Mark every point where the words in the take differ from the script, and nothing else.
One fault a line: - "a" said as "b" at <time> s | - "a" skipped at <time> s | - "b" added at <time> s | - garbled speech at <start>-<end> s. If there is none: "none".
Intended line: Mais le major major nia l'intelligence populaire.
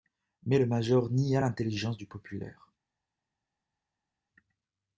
- "major" skipped at 1.1 s
- "du" added at 2.0 s